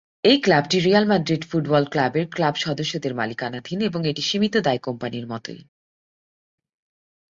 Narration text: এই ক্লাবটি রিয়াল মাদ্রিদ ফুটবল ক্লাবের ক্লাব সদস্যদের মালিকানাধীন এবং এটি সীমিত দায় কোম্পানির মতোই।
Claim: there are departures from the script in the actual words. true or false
false